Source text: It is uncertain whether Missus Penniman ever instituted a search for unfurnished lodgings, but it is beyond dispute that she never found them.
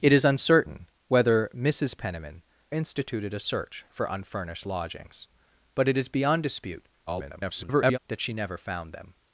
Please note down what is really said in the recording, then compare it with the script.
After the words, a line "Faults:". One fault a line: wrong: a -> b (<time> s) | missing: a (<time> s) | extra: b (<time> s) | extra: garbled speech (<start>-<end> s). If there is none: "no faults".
It is uncertain whether Missus Penniman instituted a search for unfurnished lodgings, but it is beyond dispute [garbled] that she never found them.
Faults:
missing: ever (2.4 s)
extra: garbled speech (7.1-8.0 s)